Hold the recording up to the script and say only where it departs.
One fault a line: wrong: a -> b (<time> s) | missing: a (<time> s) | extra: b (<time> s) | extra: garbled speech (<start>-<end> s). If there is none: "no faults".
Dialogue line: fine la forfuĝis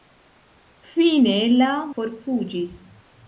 no faults